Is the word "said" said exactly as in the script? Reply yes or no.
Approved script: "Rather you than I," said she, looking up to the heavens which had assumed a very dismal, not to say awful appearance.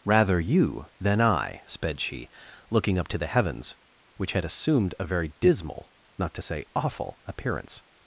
no